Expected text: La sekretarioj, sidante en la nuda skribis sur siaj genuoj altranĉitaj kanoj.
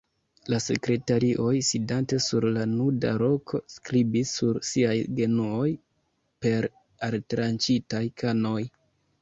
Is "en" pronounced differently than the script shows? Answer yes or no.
yes